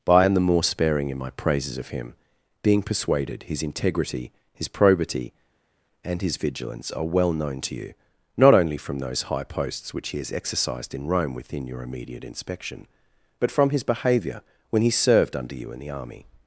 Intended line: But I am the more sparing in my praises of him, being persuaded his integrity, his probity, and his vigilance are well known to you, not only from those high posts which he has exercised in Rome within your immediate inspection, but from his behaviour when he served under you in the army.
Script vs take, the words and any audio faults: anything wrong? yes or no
no